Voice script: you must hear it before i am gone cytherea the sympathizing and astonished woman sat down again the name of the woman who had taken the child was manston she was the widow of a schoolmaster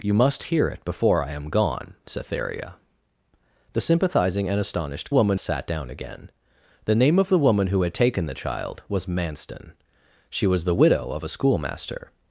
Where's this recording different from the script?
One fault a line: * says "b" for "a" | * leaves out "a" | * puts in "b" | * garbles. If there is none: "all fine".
all fine